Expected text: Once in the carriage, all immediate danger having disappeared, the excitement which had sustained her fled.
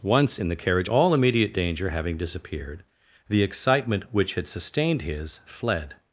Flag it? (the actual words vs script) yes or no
yes